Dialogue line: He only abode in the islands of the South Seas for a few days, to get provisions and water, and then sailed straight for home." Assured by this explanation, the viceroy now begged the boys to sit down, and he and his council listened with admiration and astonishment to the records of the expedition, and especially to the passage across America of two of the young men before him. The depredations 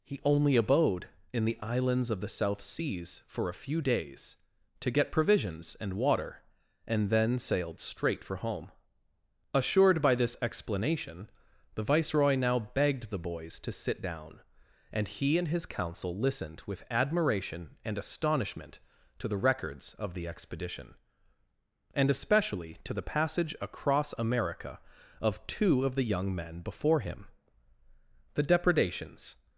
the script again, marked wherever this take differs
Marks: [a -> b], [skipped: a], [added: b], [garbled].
He only abode in the islands of the South Seas for a few days, to get provisions and water, and then sailed straight for home." Assured by this explanation, the viceroy now begged the boys to sit down, and he and his council listened with admiration and astonishment to the records of the expedition, and especially to the passage across America of two of the young men before him. The depredations